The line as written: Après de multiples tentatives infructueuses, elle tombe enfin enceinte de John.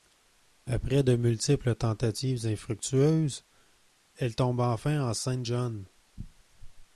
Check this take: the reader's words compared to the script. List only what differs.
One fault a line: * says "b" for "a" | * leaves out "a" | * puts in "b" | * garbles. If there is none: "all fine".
* leaves out "de"